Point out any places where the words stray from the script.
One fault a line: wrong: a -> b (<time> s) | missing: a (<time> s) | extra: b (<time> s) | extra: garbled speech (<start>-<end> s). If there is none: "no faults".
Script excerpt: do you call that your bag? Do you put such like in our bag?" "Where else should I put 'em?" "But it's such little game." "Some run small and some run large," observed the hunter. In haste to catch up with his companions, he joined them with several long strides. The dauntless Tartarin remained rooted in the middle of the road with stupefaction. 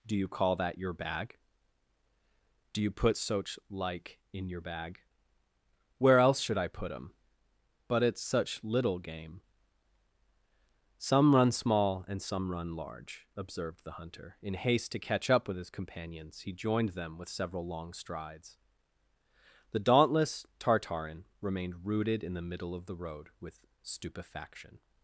wrong: our -> your (4.5 s)